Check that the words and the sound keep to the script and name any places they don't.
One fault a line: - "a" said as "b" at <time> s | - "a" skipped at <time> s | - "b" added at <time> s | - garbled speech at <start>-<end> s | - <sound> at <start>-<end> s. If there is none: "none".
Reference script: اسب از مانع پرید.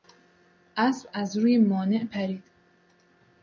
- "روی" added at 1.4 s